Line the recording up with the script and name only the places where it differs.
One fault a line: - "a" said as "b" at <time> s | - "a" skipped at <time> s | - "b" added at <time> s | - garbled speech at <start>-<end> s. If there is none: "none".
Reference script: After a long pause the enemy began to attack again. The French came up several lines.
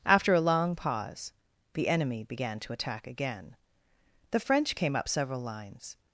none